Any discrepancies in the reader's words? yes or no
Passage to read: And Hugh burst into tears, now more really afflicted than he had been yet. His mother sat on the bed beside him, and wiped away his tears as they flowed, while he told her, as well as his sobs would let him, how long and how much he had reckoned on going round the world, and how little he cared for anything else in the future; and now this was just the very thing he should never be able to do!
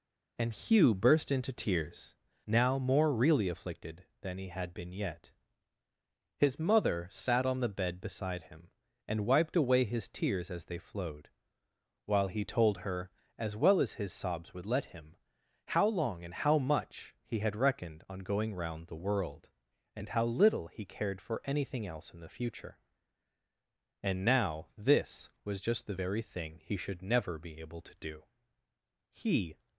yes